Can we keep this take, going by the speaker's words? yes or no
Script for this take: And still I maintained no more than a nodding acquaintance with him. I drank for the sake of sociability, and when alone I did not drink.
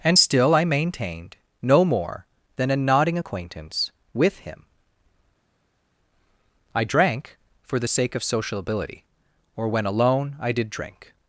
no